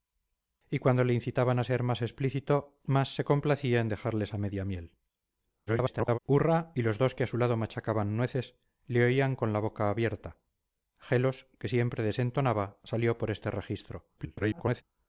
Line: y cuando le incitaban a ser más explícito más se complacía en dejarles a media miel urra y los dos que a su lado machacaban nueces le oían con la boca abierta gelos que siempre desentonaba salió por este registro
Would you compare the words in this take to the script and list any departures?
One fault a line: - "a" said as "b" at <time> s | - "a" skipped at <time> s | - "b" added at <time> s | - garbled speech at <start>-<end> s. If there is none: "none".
- garbled speech at 5.7-6.2 s
- garbled speech at 14.2-14.8 s